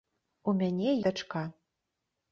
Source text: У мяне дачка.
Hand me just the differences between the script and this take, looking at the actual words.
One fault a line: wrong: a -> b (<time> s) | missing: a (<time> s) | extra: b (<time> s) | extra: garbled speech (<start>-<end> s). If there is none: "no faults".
no faults